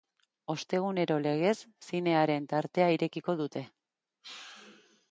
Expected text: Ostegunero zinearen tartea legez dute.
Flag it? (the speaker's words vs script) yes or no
yes